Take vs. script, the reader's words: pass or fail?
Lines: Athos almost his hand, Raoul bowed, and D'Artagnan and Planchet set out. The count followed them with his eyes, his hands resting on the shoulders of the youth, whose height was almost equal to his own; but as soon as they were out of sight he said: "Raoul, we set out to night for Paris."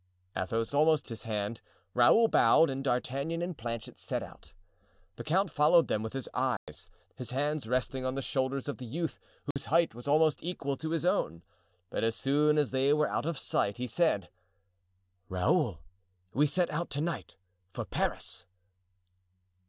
pass